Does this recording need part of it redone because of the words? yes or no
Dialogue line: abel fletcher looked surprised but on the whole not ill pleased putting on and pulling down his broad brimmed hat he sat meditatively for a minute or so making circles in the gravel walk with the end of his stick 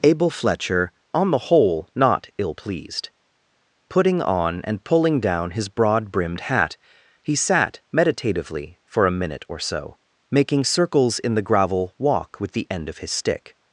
yes